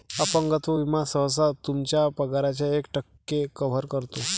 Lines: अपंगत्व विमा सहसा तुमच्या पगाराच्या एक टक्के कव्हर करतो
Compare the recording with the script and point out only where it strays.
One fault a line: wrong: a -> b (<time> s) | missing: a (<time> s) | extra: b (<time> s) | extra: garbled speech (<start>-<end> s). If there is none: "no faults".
no faults